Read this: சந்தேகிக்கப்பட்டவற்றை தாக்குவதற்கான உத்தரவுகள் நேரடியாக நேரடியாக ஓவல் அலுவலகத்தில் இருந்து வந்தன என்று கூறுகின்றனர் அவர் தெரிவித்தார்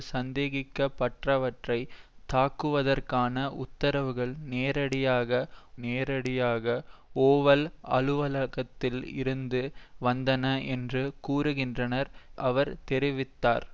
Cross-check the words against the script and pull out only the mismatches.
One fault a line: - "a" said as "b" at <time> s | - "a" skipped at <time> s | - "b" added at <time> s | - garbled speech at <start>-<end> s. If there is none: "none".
none